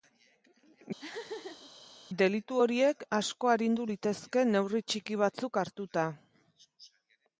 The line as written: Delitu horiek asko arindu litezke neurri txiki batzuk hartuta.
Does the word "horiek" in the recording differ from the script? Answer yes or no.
no